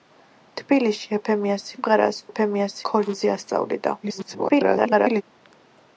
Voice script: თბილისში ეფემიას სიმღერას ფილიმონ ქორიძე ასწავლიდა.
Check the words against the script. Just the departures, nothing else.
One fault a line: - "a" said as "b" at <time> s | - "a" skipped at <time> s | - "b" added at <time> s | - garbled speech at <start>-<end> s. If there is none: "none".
- "ფილიმონ" said as "ეფემიას" at 2.3 s
- garbled speech at 4.0-5.2 s